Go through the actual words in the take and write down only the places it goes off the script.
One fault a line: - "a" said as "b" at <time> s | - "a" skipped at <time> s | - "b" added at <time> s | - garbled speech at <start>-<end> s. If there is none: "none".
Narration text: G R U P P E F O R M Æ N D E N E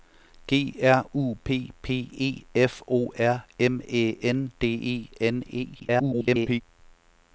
- garbled speech at 5.8-6.6 s